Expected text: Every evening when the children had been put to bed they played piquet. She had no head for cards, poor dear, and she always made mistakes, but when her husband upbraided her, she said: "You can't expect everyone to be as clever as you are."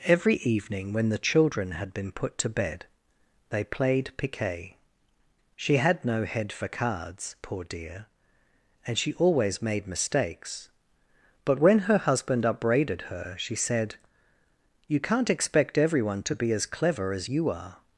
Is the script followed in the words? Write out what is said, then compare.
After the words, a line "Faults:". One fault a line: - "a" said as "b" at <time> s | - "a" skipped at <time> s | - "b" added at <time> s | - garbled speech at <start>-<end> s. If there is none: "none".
Every evening when the children had been put to bed they played piquet. She had no head for cards, poor dear, and she always made mistakes, but when her husband upbraided her, she said: "You can't expect everyone to be as clever as you are."
Faults:
none